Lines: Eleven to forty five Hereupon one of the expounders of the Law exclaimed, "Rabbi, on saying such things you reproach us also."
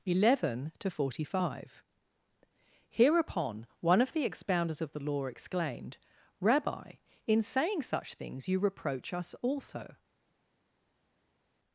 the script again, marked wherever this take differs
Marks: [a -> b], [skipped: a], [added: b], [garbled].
Eleven to forty five Hereupon one of the expounders of the Law exclaimed, "Rabbi, [on -> in] saying such things you reproach us also."